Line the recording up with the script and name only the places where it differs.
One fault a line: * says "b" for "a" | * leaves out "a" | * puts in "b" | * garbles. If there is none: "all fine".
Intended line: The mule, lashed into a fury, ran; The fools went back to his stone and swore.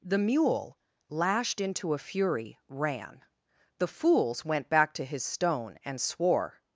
all fine